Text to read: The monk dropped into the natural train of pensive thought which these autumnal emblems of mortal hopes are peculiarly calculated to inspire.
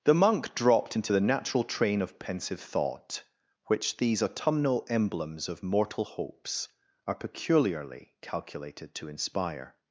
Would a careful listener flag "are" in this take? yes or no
no